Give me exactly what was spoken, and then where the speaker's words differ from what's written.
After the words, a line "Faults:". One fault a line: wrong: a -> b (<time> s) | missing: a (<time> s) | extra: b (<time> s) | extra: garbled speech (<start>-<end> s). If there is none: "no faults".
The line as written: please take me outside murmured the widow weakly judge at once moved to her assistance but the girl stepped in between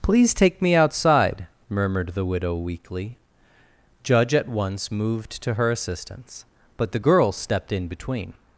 please take me outside murmured the widow weakly judge at once moved to her assistance but the girl stepped in between
Faults:
no faults